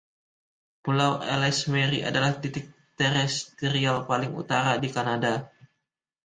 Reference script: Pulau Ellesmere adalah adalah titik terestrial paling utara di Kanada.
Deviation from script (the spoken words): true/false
true